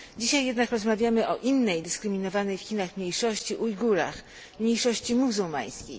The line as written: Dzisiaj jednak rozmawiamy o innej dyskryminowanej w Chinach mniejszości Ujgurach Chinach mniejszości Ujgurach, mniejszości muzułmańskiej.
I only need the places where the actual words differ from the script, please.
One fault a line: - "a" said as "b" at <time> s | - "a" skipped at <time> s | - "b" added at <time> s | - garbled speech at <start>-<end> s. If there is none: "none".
- "Chinach mniejszości Ujgurach" skipped at 4.2 s